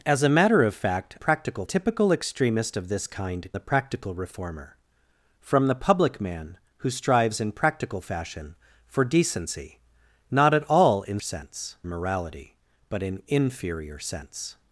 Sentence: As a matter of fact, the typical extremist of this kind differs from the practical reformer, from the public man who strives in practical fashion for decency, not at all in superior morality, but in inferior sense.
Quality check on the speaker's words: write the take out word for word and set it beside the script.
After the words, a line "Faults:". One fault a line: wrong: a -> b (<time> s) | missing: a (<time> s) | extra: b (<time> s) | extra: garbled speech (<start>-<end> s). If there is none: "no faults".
As a matter of fact, practical typical extremist of this kind the practical reformer, from the public man who strives in practical fashion for decency, not at all in sense morality, but in inferior sense.
Faults:
wrong: the -> practical (1.2 s)
missing: differs from (3.5 s)
wrong: superior -> sense (11.2 s)